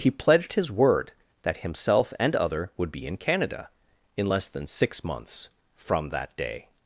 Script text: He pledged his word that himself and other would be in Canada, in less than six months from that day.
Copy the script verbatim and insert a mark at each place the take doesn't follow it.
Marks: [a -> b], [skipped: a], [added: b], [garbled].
He pledged his word that himself and other would be in Canada, in less than six months from that day.